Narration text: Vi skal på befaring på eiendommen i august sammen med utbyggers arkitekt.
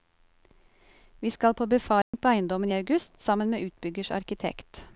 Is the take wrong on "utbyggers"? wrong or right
right